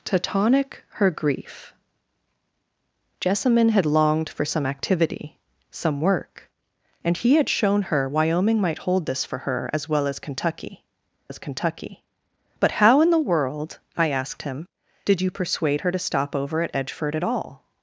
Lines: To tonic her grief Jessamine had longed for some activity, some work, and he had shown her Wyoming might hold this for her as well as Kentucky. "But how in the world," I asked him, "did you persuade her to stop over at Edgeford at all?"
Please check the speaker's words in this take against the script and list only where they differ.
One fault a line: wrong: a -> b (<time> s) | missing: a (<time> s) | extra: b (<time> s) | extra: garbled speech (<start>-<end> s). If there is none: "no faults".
extra: as Kentucky (11.3 s)